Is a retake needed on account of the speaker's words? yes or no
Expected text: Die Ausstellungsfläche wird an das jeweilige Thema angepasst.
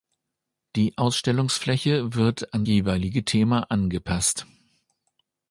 yes